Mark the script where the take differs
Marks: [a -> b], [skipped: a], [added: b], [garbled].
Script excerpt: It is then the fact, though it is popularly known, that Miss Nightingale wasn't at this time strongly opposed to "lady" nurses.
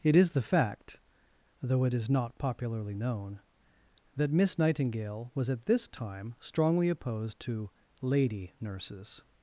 It is [skipped: then] the fact, though it is [added: not] popularly known, that Miss Nightingale [wasn't -> was] at this time strongly opposed to "lady" nurses.